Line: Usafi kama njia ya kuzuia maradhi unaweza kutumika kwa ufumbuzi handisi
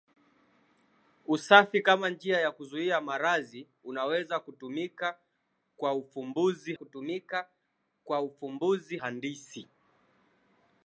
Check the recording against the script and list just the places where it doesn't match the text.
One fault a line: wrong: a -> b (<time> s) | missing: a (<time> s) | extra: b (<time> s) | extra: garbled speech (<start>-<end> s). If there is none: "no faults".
extra: kutumika kwa ufumbuzi (6.7 s)